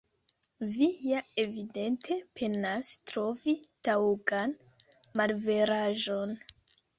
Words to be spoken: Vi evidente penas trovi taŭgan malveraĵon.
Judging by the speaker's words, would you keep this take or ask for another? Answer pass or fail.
fail